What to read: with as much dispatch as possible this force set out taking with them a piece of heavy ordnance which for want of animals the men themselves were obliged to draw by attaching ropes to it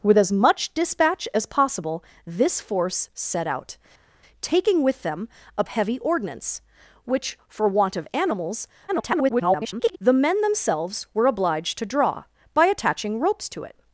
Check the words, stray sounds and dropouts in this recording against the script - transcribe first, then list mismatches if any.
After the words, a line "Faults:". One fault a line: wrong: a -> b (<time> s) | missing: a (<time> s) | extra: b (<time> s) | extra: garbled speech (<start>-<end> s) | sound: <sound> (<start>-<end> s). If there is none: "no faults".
with as much dispatch as possible this force set out taking with them a heavy ordnance which for want of animals [garbled] the men themselves were obliged to draw by attaching ropes to it
Faults:
missing: piece of (5.6 s)
extra: garbled speech (8.9-10.0 s)